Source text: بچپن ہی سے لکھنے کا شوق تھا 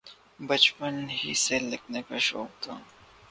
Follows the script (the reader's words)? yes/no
yes